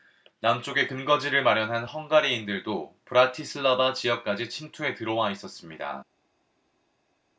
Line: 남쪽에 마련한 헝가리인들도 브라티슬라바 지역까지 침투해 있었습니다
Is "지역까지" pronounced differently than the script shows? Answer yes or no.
no